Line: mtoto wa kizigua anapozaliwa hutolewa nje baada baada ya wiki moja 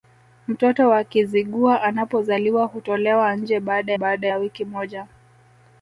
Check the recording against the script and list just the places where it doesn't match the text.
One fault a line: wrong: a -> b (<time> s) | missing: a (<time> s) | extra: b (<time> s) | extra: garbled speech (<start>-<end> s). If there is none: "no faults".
no faults